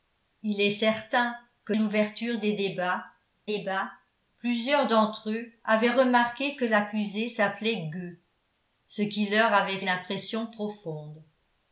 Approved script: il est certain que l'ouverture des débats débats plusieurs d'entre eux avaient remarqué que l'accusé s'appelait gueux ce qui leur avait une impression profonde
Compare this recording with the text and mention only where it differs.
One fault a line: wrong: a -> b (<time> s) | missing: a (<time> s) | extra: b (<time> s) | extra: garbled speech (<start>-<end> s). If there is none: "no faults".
no faults